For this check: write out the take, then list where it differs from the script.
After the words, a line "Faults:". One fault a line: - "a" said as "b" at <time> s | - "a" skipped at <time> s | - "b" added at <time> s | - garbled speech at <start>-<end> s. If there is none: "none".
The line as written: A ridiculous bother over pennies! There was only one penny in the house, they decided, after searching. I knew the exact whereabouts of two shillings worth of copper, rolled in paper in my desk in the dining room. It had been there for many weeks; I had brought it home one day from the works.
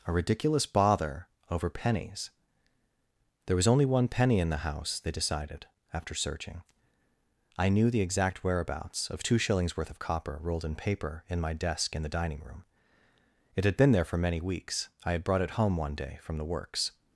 A ridiculous bother over pennies! There was only one penny in the house, they decided, after searching. I knew the exact whereabouts of two shillings worth of copper, rolled in paper in my desk in the dining room. It had been there for many weeks; I had brought it home one day from the works.
Faults:
none